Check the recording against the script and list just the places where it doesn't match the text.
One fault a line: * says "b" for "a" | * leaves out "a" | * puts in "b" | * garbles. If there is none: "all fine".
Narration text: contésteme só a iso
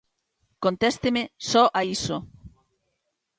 all fine